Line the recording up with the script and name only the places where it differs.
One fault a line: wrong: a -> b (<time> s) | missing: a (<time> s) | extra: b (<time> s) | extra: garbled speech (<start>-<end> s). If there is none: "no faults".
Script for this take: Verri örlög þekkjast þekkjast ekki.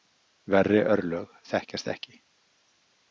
missing: þekkjast (1.9 s)